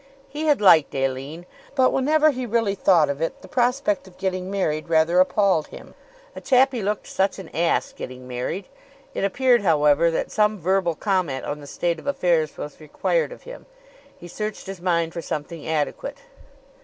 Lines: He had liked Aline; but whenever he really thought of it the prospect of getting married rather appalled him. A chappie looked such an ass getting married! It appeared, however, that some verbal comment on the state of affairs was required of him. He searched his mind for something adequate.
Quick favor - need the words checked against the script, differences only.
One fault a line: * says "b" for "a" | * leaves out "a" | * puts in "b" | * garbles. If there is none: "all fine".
all fine